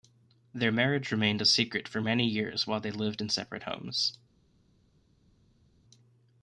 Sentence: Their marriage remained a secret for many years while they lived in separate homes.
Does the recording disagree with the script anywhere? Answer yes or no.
no